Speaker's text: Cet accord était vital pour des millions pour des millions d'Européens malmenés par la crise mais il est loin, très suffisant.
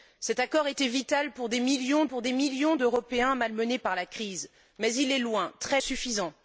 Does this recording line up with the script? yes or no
yes